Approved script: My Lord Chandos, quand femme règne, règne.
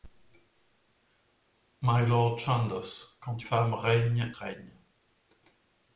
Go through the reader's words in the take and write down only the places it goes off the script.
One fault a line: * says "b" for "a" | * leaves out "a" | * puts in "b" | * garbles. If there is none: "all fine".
all fine